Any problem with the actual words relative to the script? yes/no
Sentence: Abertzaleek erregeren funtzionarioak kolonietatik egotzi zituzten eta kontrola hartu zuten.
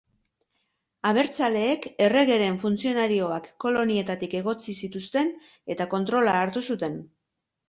no